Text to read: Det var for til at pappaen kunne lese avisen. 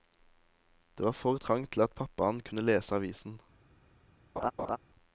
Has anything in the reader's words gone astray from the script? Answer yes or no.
yes